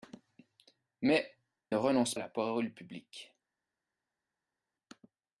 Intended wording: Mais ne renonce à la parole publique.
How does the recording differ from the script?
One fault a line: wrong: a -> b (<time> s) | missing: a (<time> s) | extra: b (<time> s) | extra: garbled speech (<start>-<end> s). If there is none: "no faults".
no faults